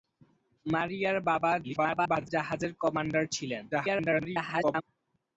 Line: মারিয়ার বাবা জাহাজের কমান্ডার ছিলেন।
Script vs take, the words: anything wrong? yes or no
yes